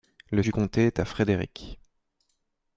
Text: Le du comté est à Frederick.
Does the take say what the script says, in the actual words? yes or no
yes